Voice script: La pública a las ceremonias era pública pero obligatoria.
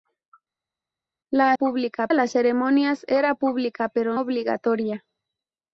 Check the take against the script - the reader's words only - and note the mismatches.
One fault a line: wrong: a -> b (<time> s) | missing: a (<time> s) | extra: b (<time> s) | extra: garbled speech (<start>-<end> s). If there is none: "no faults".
no faults